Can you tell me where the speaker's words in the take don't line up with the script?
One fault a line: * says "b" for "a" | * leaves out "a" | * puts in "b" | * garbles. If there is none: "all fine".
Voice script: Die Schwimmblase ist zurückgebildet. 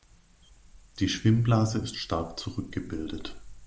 * puts in "stark"